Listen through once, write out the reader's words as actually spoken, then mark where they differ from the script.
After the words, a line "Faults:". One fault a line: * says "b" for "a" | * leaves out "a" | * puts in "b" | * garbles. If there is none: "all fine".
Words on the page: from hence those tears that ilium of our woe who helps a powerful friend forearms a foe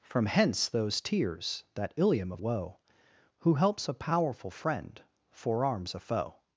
from hence those tears that ilium of woe who helps a powerful friend forearms a foe
Faults:
* leaves out "our"